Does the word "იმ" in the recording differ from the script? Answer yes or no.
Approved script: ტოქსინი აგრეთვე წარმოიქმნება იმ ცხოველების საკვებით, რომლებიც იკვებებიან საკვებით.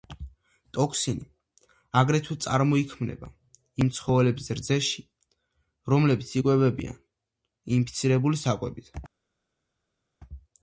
no